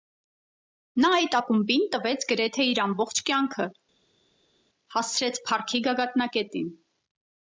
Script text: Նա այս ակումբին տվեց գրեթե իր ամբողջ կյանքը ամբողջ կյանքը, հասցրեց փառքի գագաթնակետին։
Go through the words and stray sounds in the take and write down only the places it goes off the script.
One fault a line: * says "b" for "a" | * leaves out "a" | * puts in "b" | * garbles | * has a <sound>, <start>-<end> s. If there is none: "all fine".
* says "այդ" for "այս"
* leaves out "ամբողջ կյանքը"